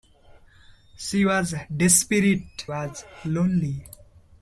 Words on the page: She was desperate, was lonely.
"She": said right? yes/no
yes